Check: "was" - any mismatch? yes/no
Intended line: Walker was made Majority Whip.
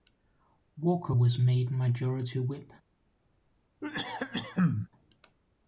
no